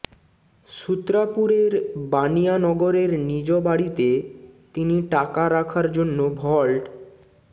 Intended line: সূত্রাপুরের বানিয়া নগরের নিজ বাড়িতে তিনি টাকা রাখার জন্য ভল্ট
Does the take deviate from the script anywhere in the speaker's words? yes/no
no